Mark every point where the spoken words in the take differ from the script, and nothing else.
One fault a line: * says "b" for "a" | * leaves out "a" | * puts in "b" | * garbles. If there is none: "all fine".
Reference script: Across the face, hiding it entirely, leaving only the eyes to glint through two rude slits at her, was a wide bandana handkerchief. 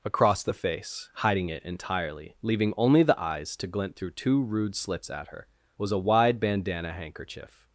all fine